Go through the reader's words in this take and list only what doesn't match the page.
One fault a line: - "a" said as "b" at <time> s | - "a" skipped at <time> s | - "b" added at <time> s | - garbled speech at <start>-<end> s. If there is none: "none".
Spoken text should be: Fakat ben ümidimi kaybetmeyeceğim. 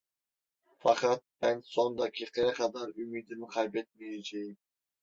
- "son dakikaya kadar" added at 1.6 s